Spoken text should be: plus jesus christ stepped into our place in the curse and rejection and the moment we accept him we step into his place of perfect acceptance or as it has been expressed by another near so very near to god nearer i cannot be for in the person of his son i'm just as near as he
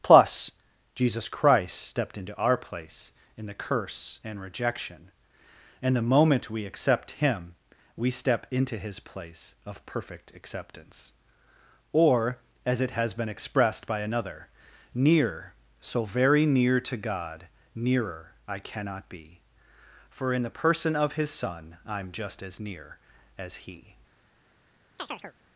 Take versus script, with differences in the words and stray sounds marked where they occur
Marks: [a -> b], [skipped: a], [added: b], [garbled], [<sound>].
plus jesus christ stepped into our place in the curse and rejection and the moment we accept him we step into his place of perfect acceptance or as it has been expressed by another near so very near to god nearer i cannot be for in the person of his son i'm just as near as he [chirp]